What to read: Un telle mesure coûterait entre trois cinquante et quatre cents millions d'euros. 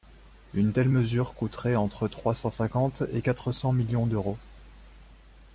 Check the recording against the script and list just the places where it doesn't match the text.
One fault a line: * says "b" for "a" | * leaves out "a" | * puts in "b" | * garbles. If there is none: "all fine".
* says "Une" for "Un"
* puts in "cent"